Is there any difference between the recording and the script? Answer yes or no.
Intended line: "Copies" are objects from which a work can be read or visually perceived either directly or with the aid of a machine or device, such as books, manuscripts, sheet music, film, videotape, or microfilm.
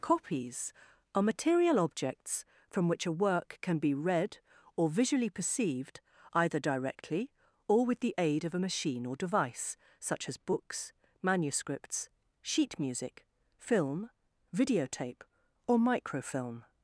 yes